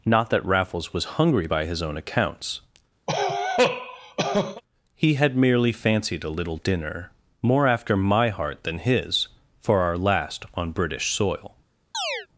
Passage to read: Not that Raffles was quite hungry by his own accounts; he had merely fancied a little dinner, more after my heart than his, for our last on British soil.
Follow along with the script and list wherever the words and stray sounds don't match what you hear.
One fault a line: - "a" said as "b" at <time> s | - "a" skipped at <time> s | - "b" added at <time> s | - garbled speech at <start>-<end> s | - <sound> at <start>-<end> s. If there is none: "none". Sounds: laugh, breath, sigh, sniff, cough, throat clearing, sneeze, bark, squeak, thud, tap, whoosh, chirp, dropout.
- "quite" skipped at 1.2 s
- cough at 3.1-4.6 s
- chirp at 11.9-12.3 s